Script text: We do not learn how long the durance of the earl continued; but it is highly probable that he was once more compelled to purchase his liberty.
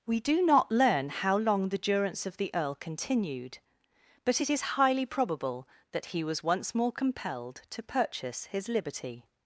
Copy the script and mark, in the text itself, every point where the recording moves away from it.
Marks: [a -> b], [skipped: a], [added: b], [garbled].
We do not learn how long the durance of the earl continued; but it is highly probable that he was once more compelled to purchase his liberty.